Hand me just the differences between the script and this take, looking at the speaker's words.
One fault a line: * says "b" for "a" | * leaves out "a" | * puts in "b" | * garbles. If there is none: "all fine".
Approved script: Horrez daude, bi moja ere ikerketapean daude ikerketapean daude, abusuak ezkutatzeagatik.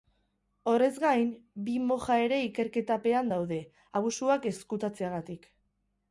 * says "gain" for "daude"
* leaves out "ikerketapean daude"